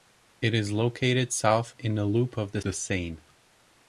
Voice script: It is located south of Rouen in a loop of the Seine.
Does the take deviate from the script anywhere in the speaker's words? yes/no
yes